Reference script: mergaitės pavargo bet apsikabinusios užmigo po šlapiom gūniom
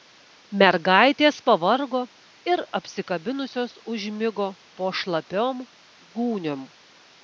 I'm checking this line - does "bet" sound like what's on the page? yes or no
no